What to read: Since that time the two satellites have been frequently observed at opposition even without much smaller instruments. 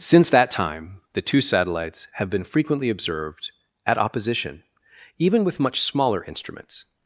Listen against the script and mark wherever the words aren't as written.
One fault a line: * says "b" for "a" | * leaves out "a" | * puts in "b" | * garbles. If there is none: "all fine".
* says "with" for "without"